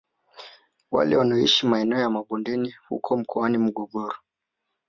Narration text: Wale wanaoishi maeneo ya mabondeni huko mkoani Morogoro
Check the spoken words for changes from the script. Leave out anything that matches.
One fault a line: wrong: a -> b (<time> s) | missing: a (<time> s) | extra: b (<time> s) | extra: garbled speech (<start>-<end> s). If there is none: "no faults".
no faults